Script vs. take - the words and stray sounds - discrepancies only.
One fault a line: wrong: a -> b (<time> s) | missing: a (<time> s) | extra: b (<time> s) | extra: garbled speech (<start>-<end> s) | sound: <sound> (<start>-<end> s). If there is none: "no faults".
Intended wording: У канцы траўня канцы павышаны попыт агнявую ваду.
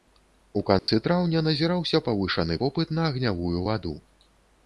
sound: dropout (0.8-0.9 s)
wrong: канцы -> назіраўся (1.5 s)
extra: на (3.0 s)